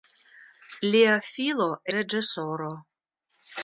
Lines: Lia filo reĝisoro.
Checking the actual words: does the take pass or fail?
pass